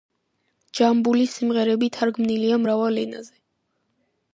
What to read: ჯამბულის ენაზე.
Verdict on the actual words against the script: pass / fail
fail